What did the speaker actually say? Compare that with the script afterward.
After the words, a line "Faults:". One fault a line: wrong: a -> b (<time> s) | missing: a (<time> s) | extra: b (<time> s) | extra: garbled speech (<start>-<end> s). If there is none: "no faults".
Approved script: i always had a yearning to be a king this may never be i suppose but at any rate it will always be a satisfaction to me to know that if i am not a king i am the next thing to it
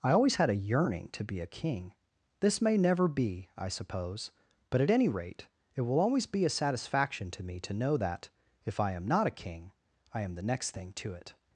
i always had a yearning to be a king this may never be i suppose but at any rate it will always be a satisfaction to me to know that if i am not a king i am the next thing to it
Faults:
no faults